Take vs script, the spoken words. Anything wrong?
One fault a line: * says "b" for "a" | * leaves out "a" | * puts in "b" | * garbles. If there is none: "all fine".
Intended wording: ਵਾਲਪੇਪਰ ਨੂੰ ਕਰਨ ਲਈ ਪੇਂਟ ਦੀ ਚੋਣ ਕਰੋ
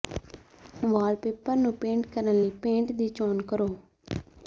* puts in "ਪੇਂਟ"